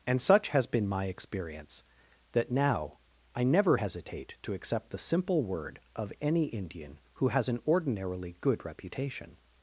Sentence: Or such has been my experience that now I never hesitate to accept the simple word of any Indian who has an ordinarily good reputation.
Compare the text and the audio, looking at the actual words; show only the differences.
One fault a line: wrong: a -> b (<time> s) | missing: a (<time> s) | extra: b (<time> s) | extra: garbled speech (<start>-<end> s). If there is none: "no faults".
wrong: Or -> And (0.1 s)